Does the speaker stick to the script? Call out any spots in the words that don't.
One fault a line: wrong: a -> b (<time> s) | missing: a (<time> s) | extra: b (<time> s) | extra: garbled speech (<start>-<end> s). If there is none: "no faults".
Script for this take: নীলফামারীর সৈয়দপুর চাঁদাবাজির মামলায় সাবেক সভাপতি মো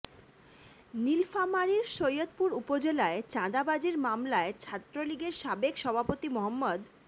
extra: উপজেলায় (2.5 s)
extra: ছাত্রলীগের (4.6 s)